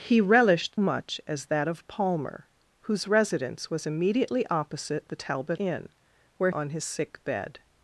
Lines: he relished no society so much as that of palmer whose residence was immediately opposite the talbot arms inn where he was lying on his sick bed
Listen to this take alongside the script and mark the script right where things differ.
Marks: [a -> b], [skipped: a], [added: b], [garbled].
he relished [skipped: no society so] much as that of palmer whose residence was immediately opposite the talbot [skipped: arms] inn where [skipped: he was lying] on his sick bed